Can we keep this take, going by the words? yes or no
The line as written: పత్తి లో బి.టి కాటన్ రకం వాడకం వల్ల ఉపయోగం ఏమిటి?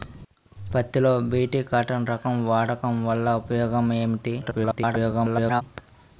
no